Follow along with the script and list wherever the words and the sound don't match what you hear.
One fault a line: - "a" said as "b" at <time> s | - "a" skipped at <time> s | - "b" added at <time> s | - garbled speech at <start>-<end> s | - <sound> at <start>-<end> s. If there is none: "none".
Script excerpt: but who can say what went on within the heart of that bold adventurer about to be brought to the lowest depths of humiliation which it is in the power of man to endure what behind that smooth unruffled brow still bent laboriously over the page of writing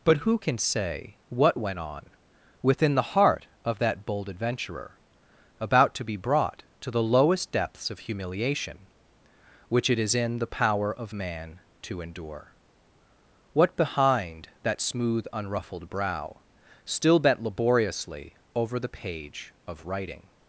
none